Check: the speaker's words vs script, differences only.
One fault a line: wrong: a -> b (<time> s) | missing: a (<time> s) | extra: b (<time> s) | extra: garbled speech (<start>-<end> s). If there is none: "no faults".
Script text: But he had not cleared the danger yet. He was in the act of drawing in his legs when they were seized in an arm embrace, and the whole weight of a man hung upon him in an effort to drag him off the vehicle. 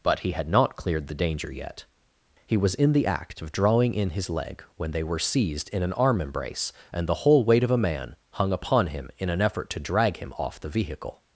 wrong: legs -> leg (4.3 s)